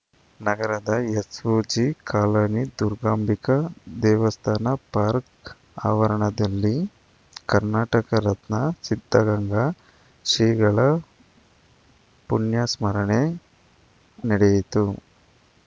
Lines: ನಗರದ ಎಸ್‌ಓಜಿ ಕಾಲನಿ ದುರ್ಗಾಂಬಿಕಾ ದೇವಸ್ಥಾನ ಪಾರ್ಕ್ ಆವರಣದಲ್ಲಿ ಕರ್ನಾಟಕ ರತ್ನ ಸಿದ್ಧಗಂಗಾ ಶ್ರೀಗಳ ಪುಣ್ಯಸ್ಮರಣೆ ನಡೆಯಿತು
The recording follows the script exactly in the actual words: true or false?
true